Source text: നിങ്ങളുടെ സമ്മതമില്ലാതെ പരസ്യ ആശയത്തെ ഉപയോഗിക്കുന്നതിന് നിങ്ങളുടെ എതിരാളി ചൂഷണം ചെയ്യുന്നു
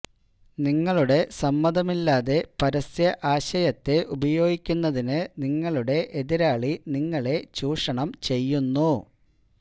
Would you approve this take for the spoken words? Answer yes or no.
no